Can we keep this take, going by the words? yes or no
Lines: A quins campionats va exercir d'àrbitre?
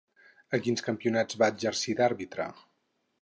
yes